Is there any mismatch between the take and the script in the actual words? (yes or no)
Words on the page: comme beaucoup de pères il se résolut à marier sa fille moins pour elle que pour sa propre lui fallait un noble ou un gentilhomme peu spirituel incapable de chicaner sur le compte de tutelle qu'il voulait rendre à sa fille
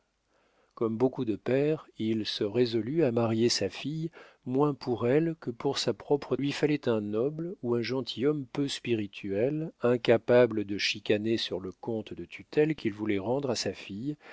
no